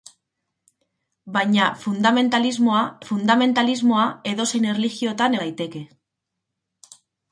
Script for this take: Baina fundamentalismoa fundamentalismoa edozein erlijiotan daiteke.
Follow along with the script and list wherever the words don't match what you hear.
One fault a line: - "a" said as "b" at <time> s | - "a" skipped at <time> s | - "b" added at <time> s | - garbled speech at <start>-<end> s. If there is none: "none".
none